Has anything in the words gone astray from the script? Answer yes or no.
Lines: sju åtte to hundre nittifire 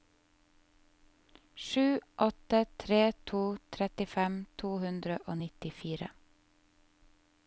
yes